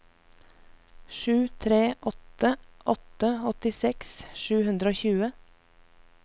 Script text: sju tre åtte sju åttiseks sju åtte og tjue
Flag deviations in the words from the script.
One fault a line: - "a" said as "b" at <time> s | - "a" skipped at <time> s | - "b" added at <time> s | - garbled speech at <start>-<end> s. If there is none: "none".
- "sju" said as "åtte" at 3.0 s
- "åtte" said as "hundre" at 4.7 s